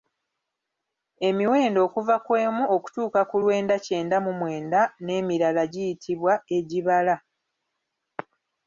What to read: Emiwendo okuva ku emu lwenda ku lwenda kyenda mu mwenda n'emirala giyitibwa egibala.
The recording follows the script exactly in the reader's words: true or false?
false